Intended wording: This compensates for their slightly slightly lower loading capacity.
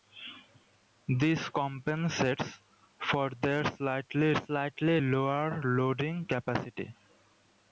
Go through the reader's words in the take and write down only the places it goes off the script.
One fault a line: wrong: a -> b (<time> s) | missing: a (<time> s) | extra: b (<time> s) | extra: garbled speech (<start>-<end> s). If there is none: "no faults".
no faults